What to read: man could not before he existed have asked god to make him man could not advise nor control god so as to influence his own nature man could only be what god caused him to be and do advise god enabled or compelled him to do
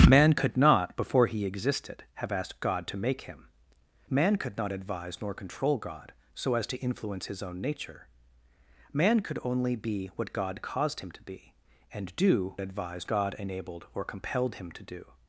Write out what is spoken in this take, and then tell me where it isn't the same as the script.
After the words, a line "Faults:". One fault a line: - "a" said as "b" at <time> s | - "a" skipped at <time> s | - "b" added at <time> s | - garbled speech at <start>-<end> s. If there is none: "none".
man could not before he existed have asked god to make him man could not advise nor control god so as to influence his own nature man could only be what god caused him to be and do advise god enabled or compelled him to do
Faults:
none